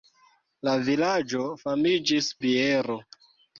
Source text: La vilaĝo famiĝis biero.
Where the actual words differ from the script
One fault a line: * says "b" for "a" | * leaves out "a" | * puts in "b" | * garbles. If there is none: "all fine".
all fine